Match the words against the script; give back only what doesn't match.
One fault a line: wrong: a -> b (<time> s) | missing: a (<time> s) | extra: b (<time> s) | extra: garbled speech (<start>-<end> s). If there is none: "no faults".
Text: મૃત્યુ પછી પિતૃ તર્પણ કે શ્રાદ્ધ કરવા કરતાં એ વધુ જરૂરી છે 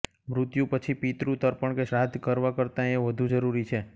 no faults